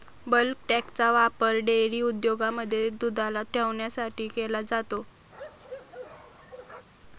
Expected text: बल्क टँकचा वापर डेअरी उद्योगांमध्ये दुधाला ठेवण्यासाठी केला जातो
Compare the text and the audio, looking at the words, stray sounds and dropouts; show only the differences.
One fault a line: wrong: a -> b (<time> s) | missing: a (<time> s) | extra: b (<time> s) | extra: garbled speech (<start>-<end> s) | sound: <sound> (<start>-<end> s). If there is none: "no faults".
sound: bark (5.3-6.9 s)